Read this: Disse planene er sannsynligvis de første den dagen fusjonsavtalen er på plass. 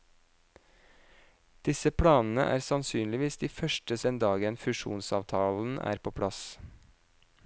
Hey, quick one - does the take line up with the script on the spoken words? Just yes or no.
yes